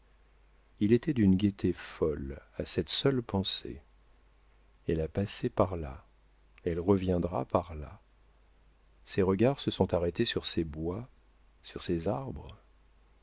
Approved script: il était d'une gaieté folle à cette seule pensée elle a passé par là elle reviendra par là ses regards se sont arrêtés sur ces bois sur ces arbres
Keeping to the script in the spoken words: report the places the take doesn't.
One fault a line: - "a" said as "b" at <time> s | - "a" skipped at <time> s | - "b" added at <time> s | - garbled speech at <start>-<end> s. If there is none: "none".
none